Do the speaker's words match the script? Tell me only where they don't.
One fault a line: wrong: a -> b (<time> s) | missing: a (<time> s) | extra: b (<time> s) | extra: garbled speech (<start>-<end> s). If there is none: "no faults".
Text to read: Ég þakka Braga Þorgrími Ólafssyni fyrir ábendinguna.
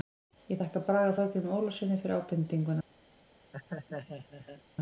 no faults